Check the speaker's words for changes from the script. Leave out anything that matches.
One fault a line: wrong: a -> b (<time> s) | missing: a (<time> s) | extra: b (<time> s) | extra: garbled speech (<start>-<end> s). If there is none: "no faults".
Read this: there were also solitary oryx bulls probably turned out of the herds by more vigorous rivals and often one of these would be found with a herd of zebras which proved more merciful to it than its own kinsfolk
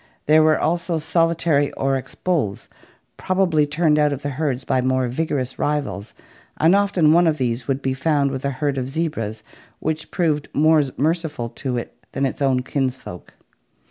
no faults